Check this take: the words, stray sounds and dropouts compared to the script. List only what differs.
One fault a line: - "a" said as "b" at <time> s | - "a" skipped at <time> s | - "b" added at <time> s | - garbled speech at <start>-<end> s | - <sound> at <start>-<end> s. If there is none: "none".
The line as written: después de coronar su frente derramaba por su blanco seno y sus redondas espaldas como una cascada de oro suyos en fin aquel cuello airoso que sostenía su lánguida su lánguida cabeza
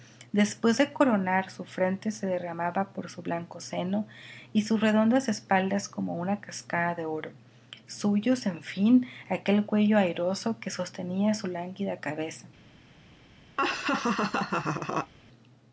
- "se" added at 2.1 s
- "su lánguida" skipped at 12.0 s
- laugh at 13.6-15.1 s